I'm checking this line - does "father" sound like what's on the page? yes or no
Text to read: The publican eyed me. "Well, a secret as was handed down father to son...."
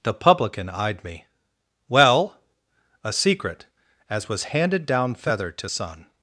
no